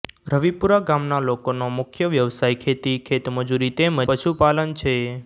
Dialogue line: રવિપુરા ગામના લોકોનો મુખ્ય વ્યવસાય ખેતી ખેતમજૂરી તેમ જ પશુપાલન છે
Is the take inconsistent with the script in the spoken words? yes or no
yes